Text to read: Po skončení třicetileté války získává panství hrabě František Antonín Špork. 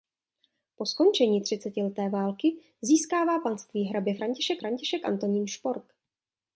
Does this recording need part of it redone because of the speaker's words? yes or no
yes